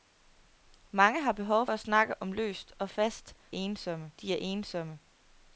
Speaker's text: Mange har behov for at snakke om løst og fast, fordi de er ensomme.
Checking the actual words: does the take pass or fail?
fail